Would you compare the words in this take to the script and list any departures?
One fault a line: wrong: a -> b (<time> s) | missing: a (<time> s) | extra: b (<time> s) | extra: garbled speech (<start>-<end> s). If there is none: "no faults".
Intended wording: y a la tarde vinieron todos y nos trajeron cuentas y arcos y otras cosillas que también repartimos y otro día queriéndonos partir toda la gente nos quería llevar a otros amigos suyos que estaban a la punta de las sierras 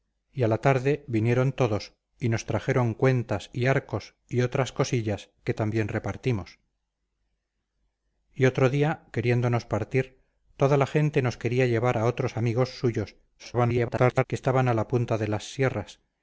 extra: garbled speech (13.4-14.2 s)